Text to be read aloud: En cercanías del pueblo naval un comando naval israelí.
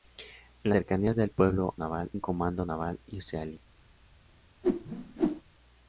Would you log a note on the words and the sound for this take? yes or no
yes